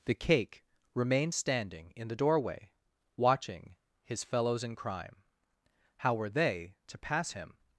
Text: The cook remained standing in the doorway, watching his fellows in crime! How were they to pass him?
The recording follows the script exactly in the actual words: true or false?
false